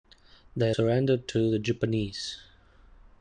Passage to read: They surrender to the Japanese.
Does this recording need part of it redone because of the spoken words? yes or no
no